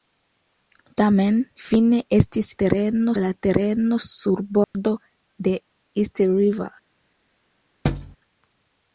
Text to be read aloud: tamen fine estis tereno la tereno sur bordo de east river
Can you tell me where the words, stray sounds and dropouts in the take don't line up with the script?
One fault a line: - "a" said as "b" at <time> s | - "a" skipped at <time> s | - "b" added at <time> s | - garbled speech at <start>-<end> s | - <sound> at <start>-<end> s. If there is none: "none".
- dropout at 4.6-4.7 s
- thud at 7.8-8.2 s